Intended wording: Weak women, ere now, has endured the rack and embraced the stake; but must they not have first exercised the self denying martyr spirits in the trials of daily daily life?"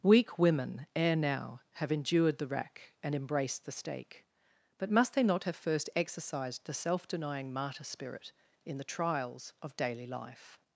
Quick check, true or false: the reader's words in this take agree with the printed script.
false